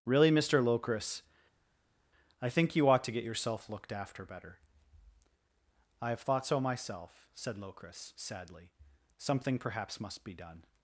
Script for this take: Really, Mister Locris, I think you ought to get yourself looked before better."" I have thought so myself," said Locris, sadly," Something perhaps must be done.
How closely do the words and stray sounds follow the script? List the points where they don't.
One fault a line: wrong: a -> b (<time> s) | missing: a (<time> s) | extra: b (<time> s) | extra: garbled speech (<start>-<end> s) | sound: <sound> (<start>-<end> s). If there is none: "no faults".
wrong: before -> after (3.9 s)